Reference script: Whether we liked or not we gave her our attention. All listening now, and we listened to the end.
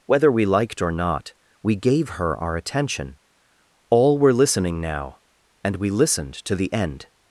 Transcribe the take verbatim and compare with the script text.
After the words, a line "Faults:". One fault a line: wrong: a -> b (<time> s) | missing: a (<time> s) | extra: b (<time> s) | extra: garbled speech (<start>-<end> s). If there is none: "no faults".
Whether we liked or not we gave her our attention. All were listening now, and we listened to the end.
Faults:
extra: were (4.2 s)